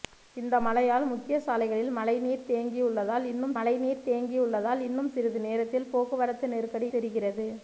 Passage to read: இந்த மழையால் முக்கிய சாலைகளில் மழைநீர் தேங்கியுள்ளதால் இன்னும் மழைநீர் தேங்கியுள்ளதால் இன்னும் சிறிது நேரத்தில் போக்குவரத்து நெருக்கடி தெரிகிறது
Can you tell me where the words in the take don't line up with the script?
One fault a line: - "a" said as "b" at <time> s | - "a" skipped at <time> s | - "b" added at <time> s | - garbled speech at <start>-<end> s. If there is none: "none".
none